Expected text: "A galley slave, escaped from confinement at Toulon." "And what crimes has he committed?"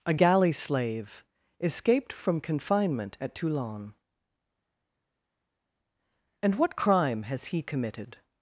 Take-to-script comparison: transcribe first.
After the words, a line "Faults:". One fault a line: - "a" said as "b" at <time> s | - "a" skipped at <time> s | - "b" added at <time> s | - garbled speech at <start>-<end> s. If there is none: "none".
"A galley slave, escaped from confinement at Toulon." "And what crime has he committed?"
Faults:
- "crimes" said as "crime" at 6.8 s